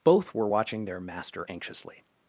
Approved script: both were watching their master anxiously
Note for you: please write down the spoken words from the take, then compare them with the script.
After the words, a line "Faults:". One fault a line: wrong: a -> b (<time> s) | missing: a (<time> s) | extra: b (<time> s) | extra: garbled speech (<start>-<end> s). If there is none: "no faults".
both were watching their master anxiously
Faults:
no faults